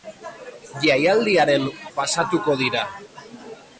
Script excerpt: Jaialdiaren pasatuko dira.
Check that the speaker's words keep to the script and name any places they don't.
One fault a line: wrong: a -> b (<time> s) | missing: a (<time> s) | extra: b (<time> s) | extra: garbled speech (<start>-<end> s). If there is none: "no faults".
no faults